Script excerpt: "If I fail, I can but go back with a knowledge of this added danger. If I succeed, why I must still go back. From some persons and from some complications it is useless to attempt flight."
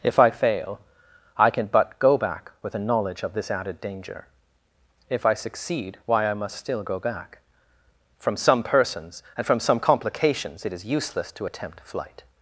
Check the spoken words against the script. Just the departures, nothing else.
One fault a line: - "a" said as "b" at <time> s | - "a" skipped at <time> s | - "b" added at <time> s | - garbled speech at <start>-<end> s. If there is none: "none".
none